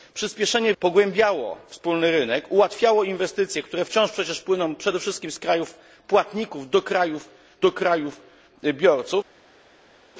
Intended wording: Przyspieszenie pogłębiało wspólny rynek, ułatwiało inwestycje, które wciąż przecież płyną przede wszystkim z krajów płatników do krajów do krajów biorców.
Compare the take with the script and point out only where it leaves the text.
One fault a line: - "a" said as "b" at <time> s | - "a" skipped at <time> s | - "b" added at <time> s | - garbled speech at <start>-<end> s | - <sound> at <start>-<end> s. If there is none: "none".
none